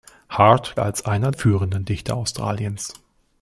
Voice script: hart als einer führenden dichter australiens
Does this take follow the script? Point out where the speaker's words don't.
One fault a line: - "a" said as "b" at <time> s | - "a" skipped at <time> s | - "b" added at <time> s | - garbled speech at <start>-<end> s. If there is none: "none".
none